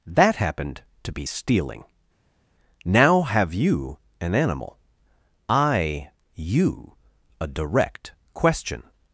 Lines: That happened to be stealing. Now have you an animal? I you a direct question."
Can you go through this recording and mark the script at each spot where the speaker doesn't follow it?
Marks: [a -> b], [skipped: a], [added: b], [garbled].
That happened to be stealing. Now have you an animal? I you a direct question."